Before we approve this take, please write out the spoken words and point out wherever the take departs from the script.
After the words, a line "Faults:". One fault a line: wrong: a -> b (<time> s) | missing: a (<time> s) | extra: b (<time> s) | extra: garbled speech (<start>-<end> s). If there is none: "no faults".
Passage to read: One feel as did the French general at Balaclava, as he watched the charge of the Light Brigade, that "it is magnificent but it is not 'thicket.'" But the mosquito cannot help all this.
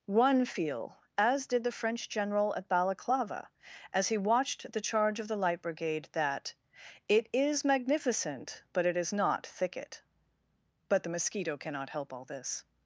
One feel as did the French general at Balaclava, as he watched the charge of the Light Brigade, that "it is magnificent but it is not 'thicket.'" But the mosquito cannot help all this.
Faults:
no faults